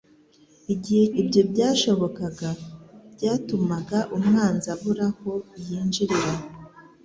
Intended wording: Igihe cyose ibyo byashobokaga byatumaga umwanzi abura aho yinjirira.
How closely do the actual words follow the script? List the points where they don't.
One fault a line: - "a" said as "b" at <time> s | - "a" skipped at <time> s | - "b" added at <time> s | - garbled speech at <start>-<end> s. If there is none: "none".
- "cyose" skipped at 1.1 s